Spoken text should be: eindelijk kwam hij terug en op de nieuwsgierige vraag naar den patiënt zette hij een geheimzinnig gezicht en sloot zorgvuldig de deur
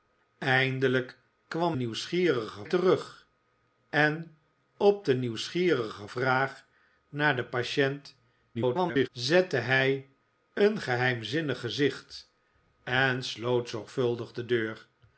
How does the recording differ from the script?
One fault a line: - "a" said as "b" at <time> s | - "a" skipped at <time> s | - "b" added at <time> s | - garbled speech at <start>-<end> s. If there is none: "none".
- "hij" said as "nieuwsgierige" at 1.7 s
- garbled speech at 8.5-9.1 s